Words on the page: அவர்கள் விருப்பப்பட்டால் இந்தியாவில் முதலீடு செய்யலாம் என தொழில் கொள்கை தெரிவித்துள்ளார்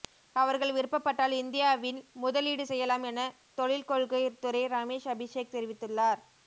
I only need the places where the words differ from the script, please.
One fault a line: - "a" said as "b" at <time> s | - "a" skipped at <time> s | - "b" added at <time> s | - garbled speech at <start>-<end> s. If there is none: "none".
- "துறை ரமேஷ் அபிஷேக்" added at 4.4 s